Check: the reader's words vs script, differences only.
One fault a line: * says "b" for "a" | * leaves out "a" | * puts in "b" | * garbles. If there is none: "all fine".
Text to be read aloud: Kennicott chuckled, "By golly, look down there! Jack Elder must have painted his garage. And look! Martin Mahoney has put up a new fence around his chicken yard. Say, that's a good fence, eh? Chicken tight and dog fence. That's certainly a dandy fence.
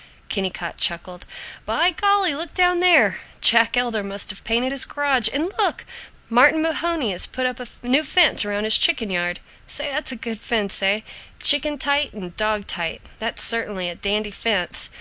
* says "tight" for "fence"